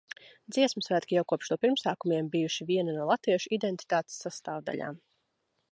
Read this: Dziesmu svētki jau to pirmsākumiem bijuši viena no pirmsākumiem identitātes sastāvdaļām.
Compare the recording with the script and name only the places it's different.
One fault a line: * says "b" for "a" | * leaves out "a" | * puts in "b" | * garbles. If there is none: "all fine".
* puts in "kopš"
* says "latviešu" for "pirmsākumiem"